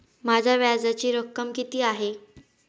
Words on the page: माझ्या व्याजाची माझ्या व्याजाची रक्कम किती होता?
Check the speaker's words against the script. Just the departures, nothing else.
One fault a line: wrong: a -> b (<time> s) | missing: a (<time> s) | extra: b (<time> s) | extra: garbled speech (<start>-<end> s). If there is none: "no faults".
missing: माझ्या व्याजाची (1.1 s)
wrong: होता -> आहे (1.8 s)